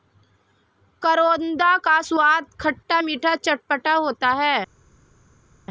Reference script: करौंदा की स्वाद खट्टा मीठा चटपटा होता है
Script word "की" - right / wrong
wrong